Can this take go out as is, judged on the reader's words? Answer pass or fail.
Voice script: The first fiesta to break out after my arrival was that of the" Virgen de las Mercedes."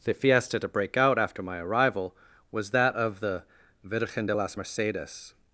fail